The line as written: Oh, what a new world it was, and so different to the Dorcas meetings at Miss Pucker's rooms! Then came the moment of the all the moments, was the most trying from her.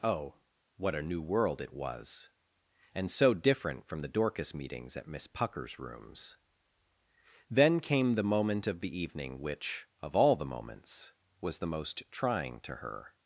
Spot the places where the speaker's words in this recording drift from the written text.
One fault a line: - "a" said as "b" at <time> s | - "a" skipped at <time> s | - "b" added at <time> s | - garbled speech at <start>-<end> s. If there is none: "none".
- "to" said as "from" at 3.9 s
- "evening which of" added at 9.0 s
- "from" said as "to" at 12.6 s